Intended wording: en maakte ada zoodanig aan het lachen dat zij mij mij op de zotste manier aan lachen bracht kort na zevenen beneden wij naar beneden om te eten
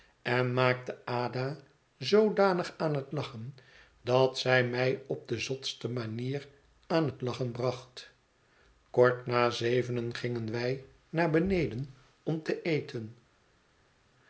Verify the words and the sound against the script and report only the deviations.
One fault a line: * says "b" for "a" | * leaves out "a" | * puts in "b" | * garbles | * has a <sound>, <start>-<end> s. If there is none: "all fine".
* leaves out "mij"
* puts in "het"
* says "gingen" for "beneden"